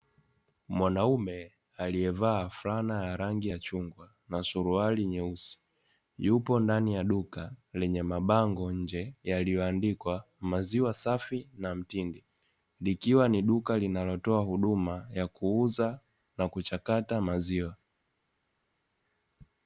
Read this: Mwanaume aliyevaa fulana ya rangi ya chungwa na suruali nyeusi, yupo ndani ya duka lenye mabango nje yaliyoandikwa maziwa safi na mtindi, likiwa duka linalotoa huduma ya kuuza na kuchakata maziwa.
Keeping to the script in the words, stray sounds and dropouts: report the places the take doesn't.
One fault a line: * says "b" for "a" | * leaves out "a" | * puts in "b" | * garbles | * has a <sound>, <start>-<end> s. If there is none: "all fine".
* puts in "ni"